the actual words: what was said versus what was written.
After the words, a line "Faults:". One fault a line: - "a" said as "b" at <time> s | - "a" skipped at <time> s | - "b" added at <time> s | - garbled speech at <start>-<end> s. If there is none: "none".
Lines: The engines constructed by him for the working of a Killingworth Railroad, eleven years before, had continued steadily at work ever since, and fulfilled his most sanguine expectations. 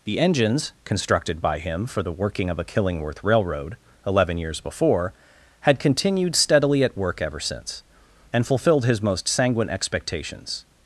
The engines constructed by him for the working of a Killingworth Railroad, eleven years before, had continued steadily at work ever since, and fulfilled his most sanguine expectations.
Faults:
none